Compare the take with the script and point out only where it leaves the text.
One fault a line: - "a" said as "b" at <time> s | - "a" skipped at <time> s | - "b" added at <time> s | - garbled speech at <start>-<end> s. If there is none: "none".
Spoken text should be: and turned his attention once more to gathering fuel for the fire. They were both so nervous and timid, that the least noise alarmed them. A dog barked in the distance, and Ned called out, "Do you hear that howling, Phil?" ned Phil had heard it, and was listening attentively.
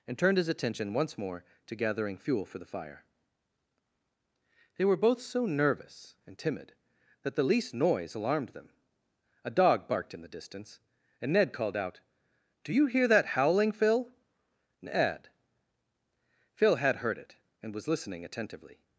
none